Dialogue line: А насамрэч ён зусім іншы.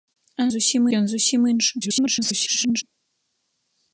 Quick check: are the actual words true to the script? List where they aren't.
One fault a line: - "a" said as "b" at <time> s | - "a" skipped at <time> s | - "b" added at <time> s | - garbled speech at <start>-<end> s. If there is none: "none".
- "насамрэч" said as "зусім" at 0.5 s
- garbled speech at 1.8-2.8 s